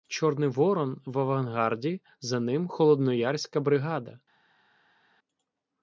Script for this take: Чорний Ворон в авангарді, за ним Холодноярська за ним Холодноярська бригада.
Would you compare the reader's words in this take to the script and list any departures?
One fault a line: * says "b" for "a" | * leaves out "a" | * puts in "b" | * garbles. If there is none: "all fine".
* leaves out "за ним Холодноярська"